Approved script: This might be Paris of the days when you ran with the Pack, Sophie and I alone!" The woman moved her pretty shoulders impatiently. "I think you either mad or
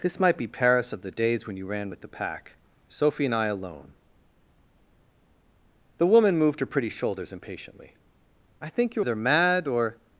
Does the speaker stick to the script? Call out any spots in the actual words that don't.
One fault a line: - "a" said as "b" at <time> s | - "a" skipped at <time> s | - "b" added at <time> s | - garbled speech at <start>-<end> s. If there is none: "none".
none